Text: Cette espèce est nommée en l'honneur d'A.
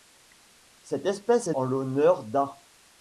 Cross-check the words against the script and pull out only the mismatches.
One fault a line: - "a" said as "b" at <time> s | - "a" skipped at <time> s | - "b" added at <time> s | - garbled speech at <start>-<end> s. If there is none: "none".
- "nommée" skipped at 1.6 s